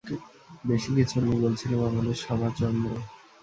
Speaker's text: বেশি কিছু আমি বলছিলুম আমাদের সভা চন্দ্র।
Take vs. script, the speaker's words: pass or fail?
pass